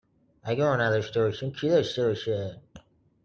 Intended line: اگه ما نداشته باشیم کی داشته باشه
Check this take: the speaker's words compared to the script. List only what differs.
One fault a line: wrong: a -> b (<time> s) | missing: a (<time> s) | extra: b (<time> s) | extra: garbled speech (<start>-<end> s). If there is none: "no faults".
no faults